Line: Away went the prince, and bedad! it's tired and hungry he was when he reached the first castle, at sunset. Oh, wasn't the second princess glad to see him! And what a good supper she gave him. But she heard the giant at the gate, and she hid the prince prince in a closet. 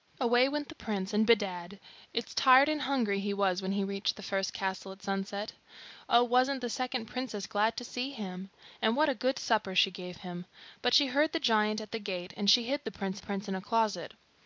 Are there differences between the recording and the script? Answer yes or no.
no